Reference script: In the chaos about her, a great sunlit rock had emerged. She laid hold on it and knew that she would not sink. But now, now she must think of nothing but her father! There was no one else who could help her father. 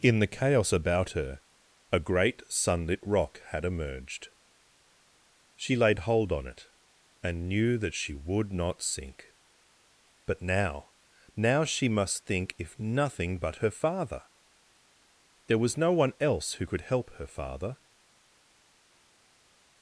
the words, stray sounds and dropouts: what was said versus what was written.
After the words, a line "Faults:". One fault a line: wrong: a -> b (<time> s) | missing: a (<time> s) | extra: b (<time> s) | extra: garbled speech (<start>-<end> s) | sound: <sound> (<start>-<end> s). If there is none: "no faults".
In the chaos about her, a great sunlit rock had emerged. She laid hold on it and knew that she would not sink. But now, now she must think if nothing but her father! There was no one else who could help her father.
Faults:
wrong: of -> if (12.6 s)